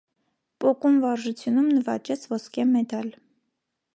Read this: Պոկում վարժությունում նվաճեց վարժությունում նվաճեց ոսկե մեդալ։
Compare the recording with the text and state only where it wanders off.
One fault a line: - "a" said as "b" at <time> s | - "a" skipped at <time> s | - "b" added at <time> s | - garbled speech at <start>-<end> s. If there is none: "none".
- "վարժությունում նվաճեց" skipped at 2.2 s